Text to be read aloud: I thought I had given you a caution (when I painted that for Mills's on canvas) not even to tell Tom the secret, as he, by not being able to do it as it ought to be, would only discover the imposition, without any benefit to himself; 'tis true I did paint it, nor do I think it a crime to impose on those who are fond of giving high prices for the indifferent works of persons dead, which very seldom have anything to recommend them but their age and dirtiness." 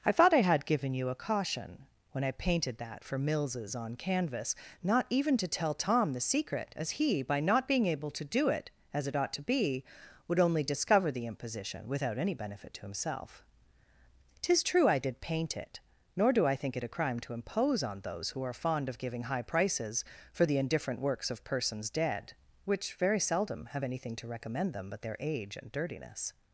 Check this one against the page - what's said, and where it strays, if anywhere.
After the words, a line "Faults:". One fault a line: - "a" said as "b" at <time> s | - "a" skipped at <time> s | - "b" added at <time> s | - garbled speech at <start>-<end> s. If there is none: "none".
I thought I had given you a caution (when I painted that for Mills's on canvas) not even to tell Tom the secret, as he, by not being able to do it as it ought to be, would only discover the imposition, without any benefit to himself; 'tis true I did paint it, nor do I think it a crime to impose on those who are fond of giving high prices for the indifferent works of persons dead, which very seldom have anything to recommend them but their age and dirtiness."
Faults:
none